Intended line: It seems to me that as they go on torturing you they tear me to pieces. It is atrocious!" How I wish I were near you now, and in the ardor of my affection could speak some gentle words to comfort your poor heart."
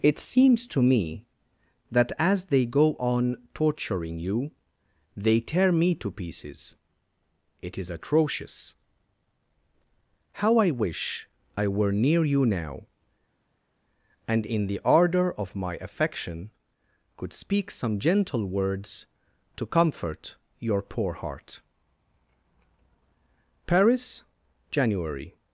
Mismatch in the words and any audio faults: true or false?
true